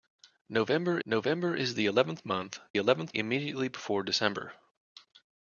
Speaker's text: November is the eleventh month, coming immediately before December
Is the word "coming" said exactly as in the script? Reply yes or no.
no